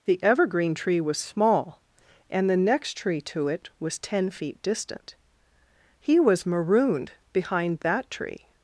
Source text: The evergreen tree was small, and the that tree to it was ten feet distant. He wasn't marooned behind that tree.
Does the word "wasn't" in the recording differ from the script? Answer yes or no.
yes